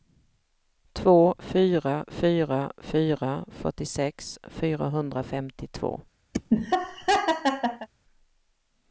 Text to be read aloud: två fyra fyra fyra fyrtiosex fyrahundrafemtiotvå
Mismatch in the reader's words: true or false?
false